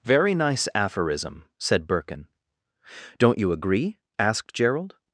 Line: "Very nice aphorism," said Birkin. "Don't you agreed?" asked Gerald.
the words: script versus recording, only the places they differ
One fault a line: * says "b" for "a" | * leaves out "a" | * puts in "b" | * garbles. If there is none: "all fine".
* says "agree" for "agreed"